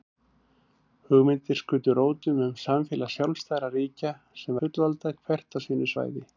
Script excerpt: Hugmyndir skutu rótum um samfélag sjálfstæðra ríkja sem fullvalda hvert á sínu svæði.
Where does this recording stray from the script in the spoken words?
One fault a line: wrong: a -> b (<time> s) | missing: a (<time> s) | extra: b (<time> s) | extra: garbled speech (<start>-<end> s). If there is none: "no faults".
no faults